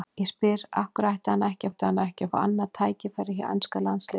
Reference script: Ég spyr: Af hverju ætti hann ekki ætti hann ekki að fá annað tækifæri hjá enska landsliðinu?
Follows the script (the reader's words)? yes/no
yes